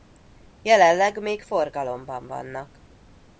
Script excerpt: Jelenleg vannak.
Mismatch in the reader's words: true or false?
true